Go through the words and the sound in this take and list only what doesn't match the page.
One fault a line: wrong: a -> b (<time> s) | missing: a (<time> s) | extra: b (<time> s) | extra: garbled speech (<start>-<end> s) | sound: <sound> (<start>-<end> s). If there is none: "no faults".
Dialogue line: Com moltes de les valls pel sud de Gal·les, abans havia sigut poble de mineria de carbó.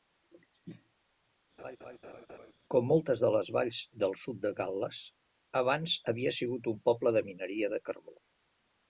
sound: laugh (1.6-2.5 s)
wrong: pel -> del (4.0 s)
extra: un (6.7 s)